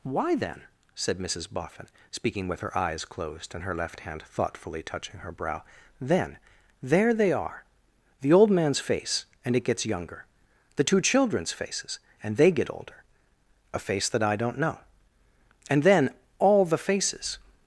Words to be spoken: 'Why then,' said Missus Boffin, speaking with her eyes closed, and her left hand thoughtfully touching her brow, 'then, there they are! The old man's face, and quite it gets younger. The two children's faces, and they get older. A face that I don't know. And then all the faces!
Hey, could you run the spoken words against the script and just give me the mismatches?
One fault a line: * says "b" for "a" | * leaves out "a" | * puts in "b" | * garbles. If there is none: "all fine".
* leaves out "quite"